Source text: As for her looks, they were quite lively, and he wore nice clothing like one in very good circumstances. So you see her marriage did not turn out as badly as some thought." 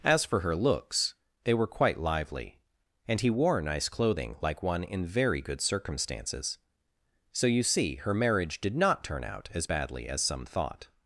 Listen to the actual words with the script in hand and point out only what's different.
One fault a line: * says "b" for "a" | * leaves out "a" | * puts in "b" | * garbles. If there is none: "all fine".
all fine